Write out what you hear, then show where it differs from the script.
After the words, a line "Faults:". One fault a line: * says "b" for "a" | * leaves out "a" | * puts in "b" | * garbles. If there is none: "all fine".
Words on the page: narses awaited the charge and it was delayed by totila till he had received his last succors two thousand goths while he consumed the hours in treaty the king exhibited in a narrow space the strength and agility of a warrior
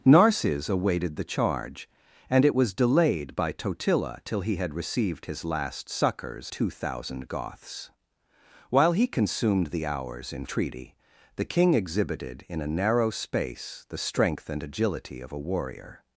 narses awaited the charge and it was delayed by totila till he had received his last succors two thousand goths while he consumed the hours in treaty the king exhibited in a narrow space the strength and agility of a warrior
Faults:
all fine